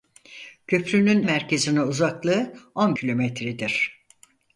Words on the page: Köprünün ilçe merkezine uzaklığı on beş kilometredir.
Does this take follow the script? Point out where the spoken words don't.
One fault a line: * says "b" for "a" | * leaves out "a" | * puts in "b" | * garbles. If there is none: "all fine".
* leaves out "ilçe"
* leaves out "beş"